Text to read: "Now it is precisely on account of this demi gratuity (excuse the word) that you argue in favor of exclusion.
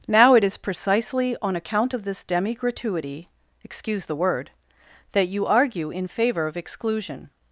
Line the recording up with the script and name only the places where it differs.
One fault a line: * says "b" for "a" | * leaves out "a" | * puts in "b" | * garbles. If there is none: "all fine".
all fine